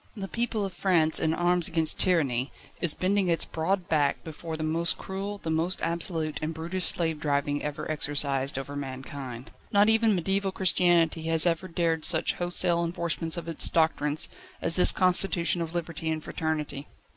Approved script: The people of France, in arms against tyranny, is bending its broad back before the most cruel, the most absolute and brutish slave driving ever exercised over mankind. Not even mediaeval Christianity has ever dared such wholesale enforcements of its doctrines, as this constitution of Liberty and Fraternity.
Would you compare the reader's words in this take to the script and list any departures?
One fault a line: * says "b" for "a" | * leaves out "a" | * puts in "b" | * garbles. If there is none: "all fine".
all fine